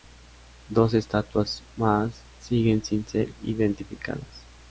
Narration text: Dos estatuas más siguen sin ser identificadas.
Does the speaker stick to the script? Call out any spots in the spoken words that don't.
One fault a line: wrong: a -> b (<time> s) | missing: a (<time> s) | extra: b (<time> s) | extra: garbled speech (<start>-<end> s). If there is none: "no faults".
no faults